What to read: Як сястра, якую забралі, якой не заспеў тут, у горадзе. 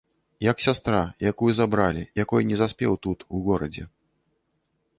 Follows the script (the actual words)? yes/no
yes